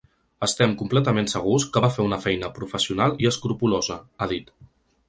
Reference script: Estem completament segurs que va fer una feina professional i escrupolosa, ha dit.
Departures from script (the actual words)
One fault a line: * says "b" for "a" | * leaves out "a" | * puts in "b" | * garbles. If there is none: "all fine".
all fine